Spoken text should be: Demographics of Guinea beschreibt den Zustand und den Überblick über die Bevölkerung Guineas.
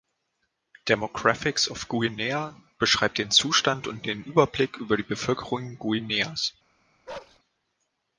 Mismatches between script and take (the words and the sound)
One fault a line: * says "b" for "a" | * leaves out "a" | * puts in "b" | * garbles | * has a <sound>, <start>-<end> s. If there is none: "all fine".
* has a bark, 7.1-7.4 s